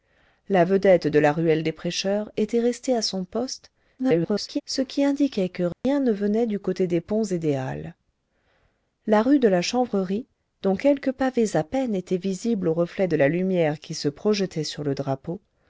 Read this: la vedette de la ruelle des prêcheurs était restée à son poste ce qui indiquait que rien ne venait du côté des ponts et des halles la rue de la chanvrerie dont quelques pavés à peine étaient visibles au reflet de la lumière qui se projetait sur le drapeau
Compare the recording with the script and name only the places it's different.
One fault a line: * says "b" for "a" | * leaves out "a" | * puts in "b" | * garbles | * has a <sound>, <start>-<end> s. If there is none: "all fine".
* garbles
* has a dropout, 5.7-5.8 s